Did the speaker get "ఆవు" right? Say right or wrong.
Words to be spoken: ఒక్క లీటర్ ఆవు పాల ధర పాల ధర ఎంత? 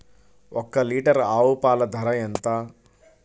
right